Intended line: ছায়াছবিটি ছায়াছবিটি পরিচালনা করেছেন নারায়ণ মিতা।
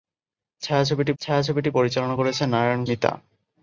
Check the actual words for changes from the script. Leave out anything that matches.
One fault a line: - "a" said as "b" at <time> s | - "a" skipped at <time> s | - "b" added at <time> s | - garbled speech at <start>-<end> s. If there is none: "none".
none